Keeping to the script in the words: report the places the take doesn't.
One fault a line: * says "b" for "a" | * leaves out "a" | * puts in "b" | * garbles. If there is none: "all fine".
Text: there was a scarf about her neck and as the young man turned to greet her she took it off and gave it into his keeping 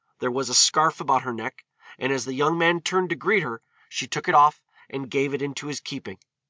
all fine